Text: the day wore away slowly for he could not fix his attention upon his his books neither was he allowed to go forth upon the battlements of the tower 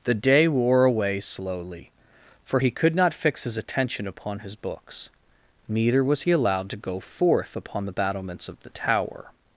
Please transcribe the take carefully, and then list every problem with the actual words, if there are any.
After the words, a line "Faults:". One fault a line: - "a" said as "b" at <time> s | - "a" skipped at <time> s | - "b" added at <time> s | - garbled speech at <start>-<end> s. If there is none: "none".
the day wore away slowly for he could not fix his attention upon his books neither was he allowed to go forth upon the battlements of the tower
Faults:
- "his" skipped at 4.5 s